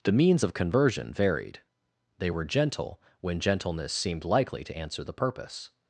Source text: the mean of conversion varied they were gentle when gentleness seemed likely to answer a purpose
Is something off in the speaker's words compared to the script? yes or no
yes